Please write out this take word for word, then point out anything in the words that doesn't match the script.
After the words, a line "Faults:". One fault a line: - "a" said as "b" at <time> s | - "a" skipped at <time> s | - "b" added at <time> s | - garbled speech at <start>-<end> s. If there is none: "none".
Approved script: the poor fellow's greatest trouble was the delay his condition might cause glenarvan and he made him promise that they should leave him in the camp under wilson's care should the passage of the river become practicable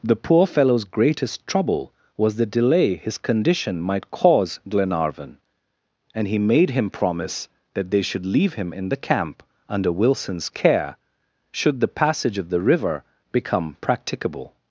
the poor fellow's greatest trouble was the delay his condition might cause glenarvan and he made him promise that they should leave him in the camp under wilson's care should the passage of the river become practicable
Faults:
none